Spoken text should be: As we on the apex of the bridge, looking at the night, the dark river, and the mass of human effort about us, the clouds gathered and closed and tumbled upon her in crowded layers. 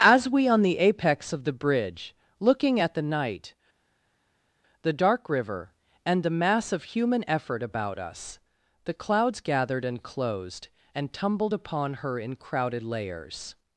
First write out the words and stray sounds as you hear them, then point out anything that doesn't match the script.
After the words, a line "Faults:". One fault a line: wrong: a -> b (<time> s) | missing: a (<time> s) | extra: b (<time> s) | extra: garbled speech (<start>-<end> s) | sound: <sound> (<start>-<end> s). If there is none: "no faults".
As we on the apex of the bridge, looking at the night, the dark river, and the mass of human effort about us, the clouds gathered and closed and tumbled upon her in crowded layers.
Faults:
no faults